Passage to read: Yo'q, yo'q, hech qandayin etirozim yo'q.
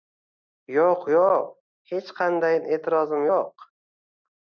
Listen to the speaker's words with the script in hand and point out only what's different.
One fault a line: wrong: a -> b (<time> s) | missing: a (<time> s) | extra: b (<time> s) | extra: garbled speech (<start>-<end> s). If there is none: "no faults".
no faults